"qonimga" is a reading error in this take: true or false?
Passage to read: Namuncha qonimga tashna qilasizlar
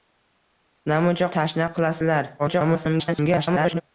true